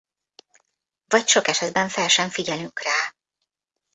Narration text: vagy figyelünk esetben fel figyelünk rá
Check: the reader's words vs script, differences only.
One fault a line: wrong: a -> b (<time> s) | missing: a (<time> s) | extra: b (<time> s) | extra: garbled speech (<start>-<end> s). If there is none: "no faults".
wrong: figyelünk -> sok (1.3 s)
extra: sem (2.1 s)